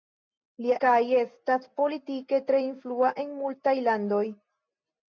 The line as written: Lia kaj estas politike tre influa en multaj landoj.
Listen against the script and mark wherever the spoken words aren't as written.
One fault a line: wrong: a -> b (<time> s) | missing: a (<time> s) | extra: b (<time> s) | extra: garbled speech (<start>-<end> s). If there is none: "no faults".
no faults